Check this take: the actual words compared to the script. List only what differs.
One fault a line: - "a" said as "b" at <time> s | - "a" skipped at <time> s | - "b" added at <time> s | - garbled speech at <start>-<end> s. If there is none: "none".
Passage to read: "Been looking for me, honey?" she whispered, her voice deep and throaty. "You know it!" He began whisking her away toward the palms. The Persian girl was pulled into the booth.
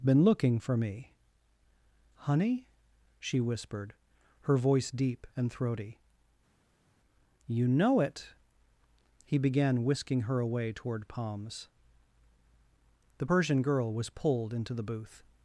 - "the" skipped at 11.1 s